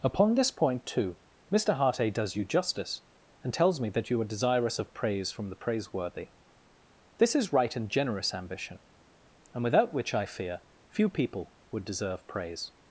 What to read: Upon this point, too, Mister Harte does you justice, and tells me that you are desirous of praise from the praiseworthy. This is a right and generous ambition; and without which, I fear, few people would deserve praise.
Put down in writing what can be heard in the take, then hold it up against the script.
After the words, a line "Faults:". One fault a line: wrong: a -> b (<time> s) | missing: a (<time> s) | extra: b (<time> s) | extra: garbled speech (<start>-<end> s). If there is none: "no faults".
Upon this point, too, Mister Harte does you justice, and tells me that you are desirous of praise from the praiseworthy. This is right and generous ambition; and without which, I fear, few people would deserve praise.
Faults:
missing: a (7.5 s)